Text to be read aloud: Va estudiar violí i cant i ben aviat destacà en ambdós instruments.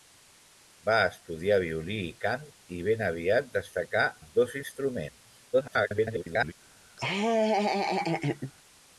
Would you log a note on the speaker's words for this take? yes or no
yes